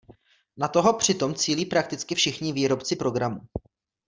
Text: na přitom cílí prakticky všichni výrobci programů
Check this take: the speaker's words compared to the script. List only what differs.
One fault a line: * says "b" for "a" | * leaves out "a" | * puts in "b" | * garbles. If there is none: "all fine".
* puts in "toho"